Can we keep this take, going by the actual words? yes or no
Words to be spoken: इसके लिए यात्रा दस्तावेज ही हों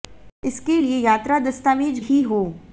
yes